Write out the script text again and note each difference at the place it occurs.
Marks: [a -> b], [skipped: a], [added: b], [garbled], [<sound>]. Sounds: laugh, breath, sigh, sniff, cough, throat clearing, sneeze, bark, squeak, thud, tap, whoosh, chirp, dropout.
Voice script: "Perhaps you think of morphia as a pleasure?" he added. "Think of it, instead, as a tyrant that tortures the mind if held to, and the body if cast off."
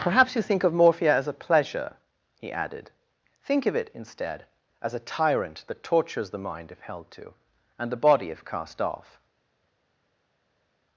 "Perhaps you think of morphia as a pleasure?" he added. "Think of it, instead, as a tyrant that tortures the mind if held to, and the body if cast off."